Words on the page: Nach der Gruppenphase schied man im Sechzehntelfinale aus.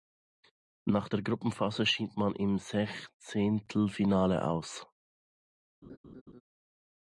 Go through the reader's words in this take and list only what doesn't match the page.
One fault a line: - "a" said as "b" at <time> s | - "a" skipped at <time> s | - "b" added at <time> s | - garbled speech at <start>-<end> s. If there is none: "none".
none